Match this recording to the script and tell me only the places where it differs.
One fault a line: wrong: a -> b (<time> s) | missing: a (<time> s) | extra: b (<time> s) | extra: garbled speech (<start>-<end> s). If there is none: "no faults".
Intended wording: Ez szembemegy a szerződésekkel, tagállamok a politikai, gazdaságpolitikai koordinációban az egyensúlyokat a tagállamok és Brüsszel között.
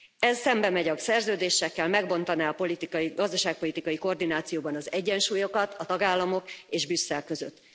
wrong: tagállamok -> megbontaná (1.9 s)